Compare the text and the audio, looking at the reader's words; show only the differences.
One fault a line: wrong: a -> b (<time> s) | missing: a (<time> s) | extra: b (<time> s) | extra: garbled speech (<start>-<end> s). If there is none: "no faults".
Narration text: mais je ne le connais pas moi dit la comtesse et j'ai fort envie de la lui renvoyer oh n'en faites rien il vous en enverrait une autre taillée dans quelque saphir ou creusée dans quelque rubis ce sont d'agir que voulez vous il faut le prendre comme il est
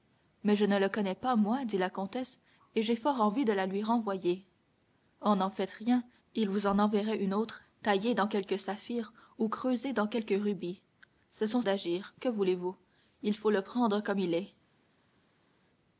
no faults